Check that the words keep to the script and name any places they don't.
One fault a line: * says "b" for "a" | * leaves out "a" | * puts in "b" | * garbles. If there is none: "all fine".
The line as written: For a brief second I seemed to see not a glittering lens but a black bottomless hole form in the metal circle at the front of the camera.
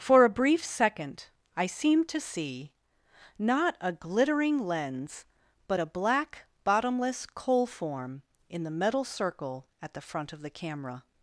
* says "coal" for "hole"